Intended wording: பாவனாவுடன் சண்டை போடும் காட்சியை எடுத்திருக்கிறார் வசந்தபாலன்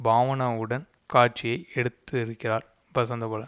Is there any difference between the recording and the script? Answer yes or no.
yes